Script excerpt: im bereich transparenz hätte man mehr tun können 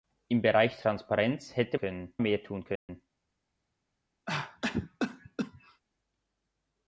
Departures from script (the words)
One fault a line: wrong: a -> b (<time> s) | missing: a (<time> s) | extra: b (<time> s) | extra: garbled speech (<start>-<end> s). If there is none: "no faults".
wrong: man -> können (1.8 s)